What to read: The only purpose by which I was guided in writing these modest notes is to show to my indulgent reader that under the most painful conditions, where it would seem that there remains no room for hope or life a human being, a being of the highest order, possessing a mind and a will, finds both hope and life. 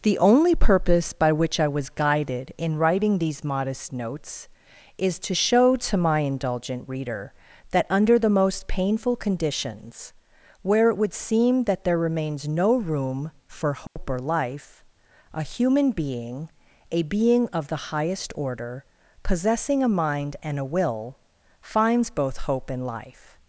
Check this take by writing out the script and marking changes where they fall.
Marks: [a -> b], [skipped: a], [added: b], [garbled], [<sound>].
The only purpose by which I was guided in writing these modest notes is to show to my indulgent reader that under the most painful conditions, where it would seem that there remains no room for hope [dropout] or life a human being, a being of the highest order, possessing a mind and a will, finds both hope and life.